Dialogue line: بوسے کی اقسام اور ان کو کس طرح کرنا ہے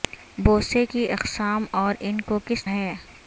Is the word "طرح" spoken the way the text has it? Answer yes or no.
no